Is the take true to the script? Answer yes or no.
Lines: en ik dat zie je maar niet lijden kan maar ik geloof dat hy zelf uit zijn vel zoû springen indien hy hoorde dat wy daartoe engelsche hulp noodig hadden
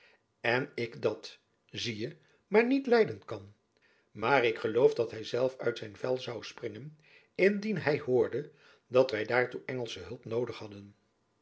yes